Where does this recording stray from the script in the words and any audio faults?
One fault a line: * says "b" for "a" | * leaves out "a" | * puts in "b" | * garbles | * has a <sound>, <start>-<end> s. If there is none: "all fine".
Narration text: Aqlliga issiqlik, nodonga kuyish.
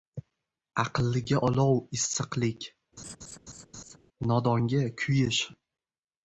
* puts in "olov"
* has a laugh, 3.0-4.0 s